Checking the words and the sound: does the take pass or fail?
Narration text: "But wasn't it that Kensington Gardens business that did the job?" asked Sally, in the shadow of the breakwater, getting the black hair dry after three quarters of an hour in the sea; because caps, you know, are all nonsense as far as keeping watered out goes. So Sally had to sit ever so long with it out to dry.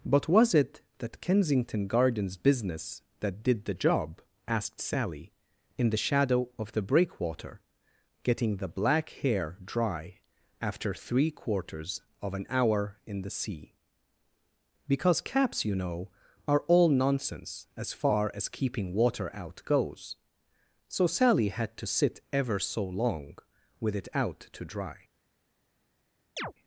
fail